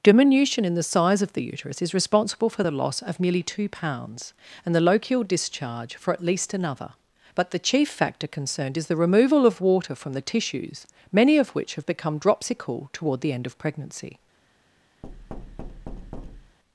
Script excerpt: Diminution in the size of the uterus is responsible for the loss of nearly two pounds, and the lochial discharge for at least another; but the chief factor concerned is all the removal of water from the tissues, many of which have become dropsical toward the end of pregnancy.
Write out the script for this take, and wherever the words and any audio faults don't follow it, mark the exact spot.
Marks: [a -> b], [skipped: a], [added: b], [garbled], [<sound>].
Diminution in the size of the uterus is responsible for the loss of nearly two pounds, and the lochial discharge for at least another; but the chief factor concerned is [skipped: all] the removal of water from the tissues, many of which have become dropsical toward the end of pregnancy. [thud]